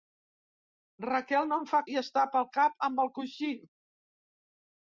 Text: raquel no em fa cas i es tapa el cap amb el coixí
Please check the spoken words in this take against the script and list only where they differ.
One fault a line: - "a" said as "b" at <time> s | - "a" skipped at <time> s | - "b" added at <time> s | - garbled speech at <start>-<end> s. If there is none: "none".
- "cas" skipped at 1.8 s